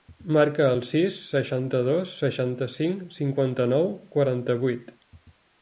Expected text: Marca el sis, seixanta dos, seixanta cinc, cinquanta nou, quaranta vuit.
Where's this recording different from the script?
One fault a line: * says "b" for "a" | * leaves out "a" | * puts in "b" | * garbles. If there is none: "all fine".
all fine